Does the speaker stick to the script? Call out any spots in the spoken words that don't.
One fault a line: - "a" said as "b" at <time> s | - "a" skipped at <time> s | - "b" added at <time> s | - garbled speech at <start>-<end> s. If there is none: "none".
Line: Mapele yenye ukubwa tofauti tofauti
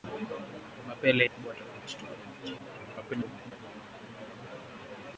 - "yenye" skipped at 1.2 s
- garbled speech at 2.6-3.5 s